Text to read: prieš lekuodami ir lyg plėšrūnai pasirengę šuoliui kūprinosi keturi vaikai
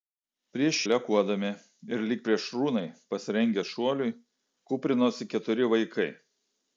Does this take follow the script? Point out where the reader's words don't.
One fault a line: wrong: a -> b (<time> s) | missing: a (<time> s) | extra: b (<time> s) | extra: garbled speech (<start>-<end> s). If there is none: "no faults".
no faults